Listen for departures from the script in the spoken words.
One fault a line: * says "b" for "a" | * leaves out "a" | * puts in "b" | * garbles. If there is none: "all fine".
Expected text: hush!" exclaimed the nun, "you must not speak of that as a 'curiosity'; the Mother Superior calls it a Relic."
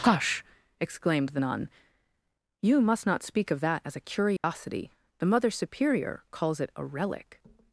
all fine